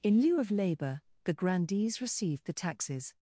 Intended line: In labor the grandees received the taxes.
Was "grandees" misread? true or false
false